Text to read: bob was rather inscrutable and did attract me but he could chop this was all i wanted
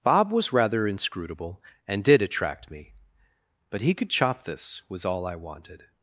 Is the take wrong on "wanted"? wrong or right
right